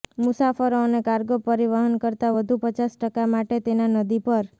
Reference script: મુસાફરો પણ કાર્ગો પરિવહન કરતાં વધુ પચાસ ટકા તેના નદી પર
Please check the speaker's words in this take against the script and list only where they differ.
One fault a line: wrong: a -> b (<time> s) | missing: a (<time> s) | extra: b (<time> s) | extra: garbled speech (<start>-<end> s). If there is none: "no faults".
wrong: પણ -> અને (0.8 s)
extra: માટે (3.3 s)